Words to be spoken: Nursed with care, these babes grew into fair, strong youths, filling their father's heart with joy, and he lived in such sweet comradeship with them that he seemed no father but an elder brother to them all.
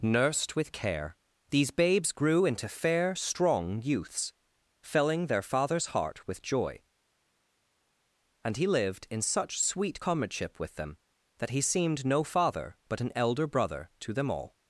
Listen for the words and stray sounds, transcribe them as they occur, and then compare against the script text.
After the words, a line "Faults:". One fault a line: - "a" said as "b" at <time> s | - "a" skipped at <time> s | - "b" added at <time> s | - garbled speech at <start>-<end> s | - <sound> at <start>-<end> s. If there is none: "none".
Nursed with care, these babes grew into fair, strong youths, filling their father's heart with joy, and he lived in such sweet comradeship with them that he seemed no father but an elder brother to them all.
Faults:
none